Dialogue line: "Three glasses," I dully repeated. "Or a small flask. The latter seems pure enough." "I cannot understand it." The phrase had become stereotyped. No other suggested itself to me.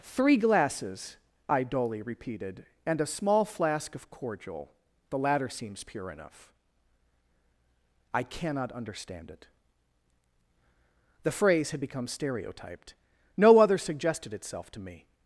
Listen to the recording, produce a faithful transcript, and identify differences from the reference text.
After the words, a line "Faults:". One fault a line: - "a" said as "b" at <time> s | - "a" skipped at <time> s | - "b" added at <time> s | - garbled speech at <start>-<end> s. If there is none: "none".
"Three glasses," I dully repeated. "And a small flask of cordial. The latter seems pure enough." "I cannot understand it." The phrase had become stereotyped. No other suggested itself to me.
Faults:
- "Or" said as "And" at 2.9 s
- "of cordial" added at 4.0 s